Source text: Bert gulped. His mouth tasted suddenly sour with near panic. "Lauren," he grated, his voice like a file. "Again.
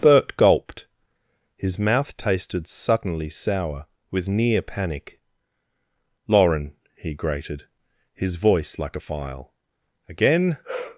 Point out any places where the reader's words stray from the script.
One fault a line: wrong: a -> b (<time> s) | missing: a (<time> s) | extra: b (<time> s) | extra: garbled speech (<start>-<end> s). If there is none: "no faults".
no faults